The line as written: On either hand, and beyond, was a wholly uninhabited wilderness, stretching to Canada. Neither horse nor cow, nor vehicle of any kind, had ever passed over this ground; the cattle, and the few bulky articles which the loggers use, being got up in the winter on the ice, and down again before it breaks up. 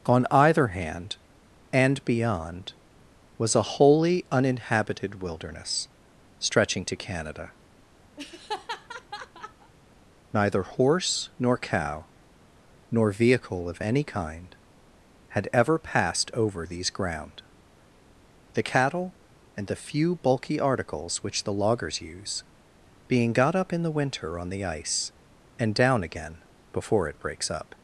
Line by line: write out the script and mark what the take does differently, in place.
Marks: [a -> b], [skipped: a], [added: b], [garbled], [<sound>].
On either hand, and beyond, was a wholly uninhabited wilderness, stretching to Canada. [laugh] Neither horse nor cow, nor vehicle of any kind, had ever passed over [this -> these] ground; the cattle, and the few bulky articles which the loggers use, being got up in the winter on the ice, and down again before it breaks up.